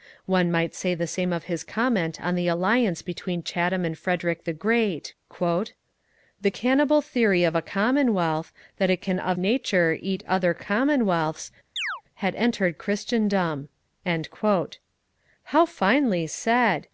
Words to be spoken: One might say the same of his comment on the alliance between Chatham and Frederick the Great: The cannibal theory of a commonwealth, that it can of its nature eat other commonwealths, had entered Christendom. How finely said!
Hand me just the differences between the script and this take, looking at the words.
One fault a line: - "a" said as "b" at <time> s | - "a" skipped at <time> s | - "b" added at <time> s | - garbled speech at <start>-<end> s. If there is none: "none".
- "its" skipped at 9.4 s